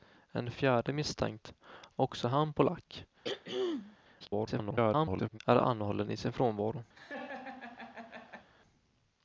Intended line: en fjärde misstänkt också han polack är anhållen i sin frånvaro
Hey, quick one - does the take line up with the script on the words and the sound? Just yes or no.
no